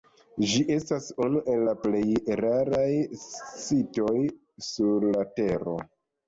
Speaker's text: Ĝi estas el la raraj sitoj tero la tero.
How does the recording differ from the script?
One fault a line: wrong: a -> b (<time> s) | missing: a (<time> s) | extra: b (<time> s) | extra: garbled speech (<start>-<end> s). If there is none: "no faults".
extra: unu (1.3 s)
extra: plej (1.9 s)
wrong: tero -> sur (4.7 s)